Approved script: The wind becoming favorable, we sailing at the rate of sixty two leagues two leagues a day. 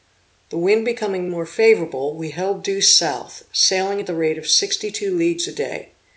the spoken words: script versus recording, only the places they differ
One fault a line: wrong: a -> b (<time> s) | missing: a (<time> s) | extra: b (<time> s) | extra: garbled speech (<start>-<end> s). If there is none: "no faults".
extra: more (1.3 s)
extra: held due south (2.3 s)
missing: two leagues (5.5 s)